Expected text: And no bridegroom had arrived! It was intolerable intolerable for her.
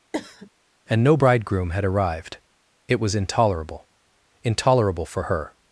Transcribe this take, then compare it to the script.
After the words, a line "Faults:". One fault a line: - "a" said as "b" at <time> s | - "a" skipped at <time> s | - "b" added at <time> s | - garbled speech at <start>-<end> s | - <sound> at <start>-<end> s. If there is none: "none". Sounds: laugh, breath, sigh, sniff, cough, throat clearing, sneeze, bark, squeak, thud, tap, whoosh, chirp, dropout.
And no bridegroom had arrived! It was intolerable intolerable for her.
Faults:
- cough at 0.1-0.5 s